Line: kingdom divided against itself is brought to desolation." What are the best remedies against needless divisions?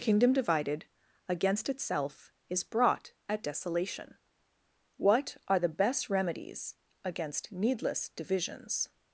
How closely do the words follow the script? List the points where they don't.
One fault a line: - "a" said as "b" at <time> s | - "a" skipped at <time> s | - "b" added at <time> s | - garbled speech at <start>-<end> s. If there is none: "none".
- "to" said as "at" at 3.3 s